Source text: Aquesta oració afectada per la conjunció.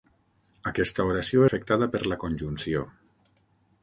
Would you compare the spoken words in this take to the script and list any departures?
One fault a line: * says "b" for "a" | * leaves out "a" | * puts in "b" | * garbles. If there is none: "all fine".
all fine